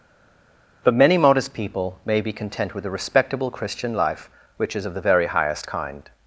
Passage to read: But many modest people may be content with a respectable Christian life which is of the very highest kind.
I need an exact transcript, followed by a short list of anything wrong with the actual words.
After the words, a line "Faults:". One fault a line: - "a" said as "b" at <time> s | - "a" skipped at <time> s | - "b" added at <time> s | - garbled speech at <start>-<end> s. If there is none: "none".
But many modest people may be content with a respectable Christian life which is of the very highest kind.
Faults:
none